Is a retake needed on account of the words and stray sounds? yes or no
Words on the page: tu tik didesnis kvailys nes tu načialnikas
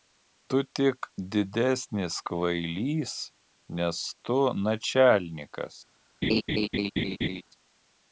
yes